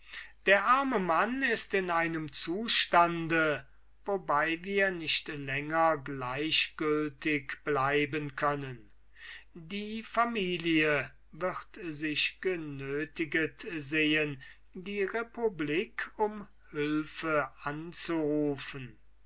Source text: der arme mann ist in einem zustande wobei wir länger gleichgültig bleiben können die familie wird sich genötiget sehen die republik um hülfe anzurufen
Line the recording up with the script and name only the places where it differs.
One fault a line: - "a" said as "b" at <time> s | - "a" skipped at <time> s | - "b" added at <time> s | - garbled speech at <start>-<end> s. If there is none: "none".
- "nicht" added at 4.9 s